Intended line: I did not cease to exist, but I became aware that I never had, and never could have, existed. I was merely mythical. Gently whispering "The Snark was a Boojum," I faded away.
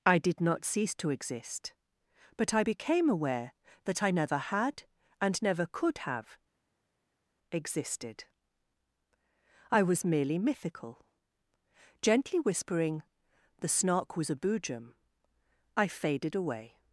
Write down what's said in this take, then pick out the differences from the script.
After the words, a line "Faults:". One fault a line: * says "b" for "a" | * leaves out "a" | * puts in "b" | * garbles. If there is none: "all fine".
I did not cease to exist, but I became aware that I never had, and never could have, existed. I was merely mythical. Gently whispering "The Snark was a Boojum," I faded away.
Faults:
all fine